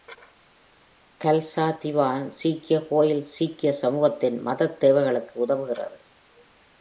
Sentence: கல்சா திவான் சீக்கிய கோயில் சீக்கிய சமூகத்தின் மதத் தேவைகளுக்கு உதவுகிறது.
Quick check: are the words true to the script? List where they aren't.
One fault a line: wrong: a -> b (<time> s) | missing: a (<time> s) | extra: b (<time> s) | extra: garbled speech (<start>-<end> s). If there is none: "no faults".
no faults